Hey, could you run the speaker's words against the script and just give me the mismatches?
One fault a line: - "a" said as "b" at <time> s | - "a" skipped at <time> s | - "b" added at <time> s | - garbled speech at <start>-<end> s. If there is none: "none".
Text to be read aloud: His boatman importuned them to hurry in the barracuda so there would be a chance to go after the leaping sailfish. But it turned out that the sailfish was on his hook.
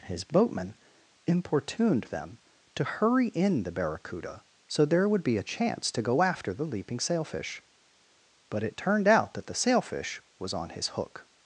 none